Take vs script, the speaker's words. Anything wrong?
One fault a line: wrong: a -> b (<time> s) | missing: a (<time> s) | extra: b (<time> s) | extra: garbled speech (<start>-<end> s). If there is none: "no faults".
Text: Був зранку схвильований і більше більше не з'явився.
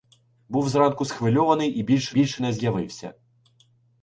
no faults